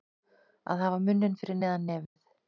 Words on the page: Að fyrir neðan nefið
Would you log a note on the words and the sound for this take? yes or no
yes